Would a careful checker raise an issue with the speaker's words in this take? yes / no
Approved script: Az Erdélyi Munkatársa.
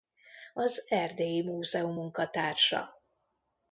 yes